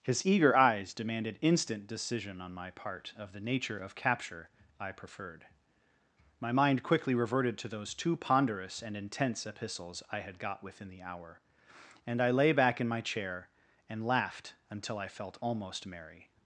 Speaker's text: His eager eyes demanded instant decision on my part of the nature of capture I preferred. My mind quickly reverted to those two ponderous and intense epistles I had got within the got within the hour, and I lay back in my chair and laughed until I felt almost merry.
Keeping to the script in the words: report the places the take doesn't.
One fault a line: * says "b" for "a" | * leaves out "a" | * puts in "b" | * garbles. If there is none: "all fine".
* leaves out "got within the"